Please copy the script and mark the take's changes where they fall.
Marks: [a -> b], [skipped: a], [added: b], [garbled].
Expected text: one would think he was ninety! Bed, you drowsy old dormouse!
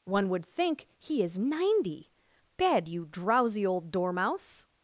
one would think he [was -> is] ninety! Bed, you drowsy old dormouse!